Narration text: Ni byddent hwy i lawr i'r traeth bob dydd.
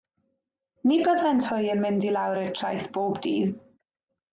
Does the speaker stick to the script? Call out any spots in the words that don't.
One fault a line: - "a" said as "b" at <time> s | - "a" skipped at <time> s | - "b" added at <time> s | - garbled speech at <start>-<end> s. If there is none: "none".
- "yn mynd" added at 1.8 s